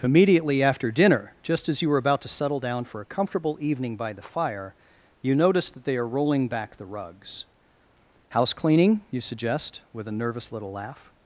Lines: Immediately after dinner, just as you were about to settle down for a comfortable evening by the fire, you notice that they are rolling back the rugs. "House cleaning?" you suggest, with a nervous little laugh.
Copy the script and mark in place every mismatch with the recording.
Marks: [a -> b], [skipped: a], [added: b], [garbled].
Immediately after dinner, just as you were about to settle down for a comfortable evening by the fire, you notice that they are rolling back the rugs. "House cleaning?" you suggest, with a nervous little laugh.